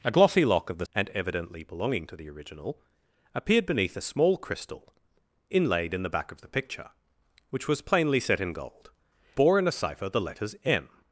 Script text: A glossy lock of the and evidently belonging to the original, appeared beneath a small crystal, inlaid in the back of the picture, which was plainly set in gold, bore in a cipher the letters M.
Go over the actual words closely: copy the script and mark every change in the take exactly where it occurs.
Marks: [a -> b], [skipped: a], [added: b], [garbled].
A glossy lock of the and evidently belonging to the original, appeared beneath a small crystal, inlaid in the back of the picture, which was plainly set in gold, bore in a cipher the letters M.